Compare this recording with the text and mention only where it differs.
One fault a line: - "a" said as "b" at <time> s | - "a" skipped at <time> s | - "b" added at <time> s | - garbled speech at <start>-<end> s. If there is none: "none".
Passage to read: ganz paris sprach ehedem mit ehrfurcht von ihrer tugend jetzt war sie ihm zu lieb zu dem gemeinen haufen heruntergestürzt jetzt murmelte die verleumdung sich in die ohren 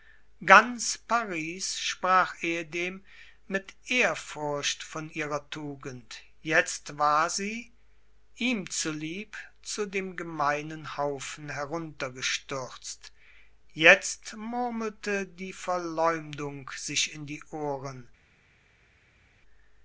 none